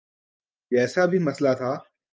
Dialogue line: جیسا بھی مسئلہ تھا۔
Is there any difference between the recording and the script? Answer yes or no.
no